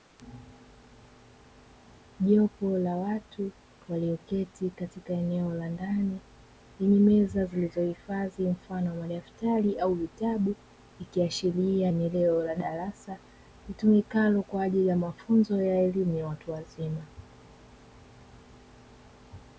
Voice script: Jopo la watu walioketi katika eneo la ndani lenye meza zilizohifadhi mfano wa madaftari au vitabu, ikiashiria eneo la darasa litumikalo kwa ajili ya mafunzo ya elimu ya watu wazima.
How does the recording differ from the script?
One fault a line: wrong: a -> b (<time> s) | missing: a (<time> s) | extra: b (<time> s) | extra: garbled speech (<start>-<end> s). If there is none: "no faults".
no faults